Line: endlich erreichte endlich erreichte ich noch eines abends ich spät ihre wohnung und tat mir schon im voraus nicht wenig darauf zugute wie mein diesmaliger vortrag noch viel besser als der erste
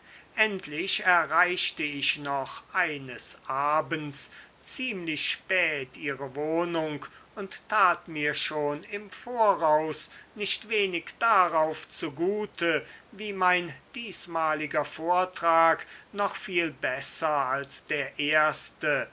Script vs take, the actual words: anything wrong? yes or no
yes